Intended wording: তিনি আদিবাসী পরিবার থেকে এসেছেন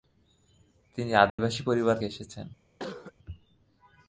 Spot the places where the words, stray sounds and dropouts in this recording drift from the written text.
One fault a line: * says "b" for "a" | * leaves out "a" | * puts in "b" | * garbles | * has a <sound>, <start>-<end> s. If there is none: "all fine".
* has a dropout, 1.3-1.4 s
* leaves out "থেকে"
* has a cough, 2.8-3.1 s